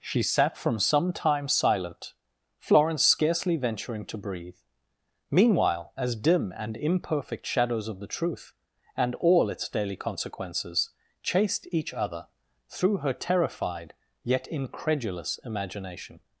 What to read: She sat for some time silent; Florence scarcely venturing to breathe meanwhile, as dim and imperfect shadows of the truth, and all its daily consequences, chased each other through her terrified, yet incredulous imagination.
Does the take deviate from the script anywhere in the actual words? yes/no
yes